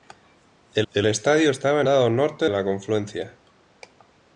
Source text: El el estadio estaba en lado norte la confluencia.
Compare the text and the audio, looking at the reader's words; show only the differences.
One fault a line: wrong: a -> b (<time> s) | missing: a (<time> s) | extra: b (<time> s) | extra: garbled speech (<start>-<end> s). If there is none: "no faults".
no faults